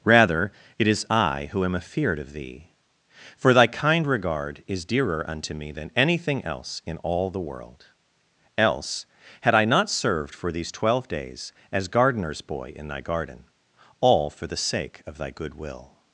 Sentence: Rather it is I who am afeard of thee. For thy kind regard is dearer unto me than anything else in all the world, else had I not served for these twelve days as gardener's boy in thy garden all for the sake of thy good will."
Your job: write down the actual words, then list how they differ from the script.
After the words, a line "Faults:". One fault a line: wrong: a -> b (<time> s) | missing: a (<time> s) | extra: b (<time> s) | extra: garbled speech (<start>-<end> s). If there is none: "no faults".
Rather it is I who am afeard of thee. For thy kind regard is dearer unto me than anything else in all the world, else had I not served for these twelve days as gardener's boy in thy garden all for the sake of thy good will."
Faults:
no faults